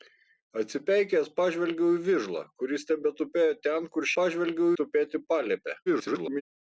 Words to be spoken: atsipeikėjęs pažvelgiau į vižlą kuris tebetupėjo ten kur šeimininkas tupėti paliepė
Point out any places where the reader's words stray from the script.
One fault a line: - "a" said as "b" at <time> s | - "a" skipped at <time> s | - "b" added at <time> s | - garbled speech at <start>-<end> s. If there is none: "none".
- "šeimininkas" said as "pažvelgiau" at 4.2 s
- garbled speech at 5.9-6.4 s